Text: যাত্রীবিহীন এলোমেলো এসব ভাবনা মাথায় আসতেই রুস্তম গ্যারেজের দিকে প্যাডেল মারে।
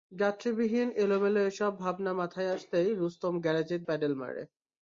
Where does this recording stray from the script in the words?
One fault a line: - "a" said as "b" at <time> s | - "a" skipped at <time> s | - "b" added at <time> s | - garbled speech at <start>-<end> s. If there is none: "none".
- "দিকে" skipped at 3.8 s